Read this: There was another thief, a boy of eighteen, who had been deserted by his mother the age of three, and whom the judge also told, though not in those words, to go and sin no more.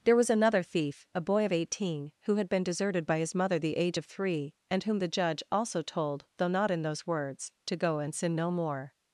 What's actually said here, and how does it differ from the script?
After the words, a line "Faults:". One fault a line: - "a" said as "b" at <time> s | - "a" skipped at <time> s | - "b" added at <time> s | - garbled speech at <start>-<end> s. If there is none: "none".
There was another thief, a boy of eighteen, who had been deserted by his mother the age of three, and whom the judge also told, though not in those words, to go and sin no more.
Faults:
none